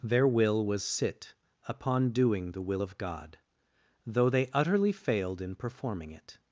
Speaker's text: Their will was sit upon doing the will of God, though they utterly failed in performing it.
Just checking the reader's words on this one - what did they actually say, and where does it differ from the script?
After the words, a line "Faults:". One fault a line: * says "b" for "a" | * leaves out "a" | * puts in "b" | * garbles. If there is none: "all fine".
Their will was sit upon doing the will of God, though they utterly failed in performing it.
Faults:
all fine